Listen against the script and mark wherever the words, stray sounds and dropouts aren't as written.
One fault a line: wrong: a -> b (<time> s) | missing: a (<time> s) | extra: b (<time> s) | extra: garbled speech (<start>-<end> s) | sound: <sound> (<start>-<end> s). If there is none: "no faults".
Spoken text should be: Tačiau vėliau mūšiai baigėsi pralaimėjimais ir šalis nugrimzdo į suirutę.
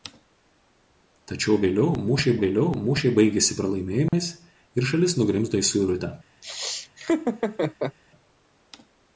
extra: vėliau mūšiai (2.4 s)
sound: dropout (4.1-4.1 s)
sound: laugh (6.4-8.0 s)